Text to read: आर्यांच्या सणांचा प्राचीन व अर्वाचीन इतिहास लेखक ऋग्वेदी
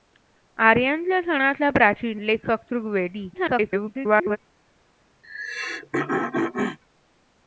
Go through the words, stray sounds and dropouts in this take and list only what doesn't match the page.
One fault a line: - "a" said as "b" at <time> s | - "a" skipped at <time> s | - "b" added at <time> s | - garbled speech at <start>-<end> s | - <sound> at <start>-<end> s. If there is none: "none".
- "व अर्वाचीन इतिहास" skipped at 2.2 s
- garbled speech at 3.3-4.4 s
- throat clearing at 5.2-6.8 s